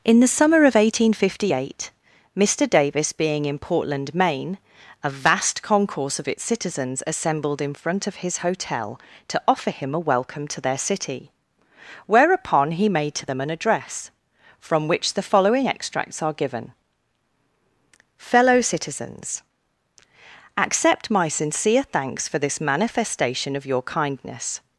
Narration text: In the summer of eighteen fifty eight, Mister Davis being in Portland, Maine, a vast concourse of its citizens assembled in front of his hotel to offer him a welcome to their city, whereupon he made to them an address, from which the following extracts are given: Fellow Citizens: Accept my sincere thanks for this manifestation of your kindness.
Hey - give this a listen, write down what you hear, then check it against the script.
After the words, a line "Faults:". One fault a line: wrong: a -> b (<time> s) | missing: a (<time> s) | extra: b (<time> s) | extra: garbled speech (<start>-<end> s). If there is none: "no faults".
In the summer of eighteen fifty eight, Mister Davis being in Portland, Maine, a vast concourse of its citizens assembled in front of his hotel to offer him a welcome to their city, whereupon he made to them an address, from which the following extracts are given: Fellow Citizens: Accept my sincere thanks for this manifestation of your kindness.
Faults:
no faults